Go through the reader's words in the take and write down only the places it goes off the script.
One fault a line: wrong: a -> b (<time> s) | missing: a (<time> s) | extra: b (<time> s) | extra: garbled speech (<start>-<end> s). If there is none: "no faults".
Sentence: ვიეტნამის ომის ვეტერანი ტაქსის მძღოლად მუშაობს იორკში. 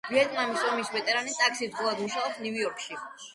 extra: ნიუ (2.4 s)